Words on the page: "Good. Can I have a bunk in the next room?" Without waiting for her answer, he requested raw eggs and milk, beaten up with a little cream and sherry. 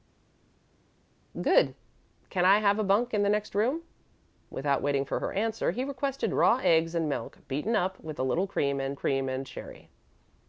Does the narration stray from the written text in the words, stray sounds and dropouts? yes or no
yes